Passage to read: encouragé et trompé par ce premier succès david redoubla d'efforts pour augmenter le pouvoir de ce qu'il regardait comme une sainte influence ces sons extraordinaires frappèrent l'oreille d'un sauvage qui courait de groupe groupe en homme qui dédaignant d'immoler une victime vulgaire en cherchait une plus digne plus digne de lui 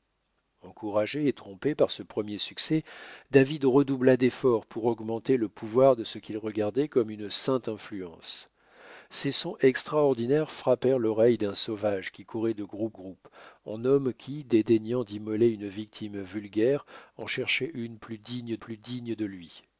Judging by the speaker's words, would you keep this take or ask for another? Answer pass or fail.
pass